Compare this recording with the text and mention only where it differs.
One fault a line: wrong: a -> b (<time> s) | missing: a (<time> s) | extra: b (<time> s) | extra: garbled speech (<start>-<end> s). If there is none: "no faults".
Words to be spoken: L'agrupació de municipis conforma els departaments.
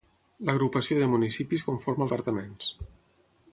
missing: els (2.1 s)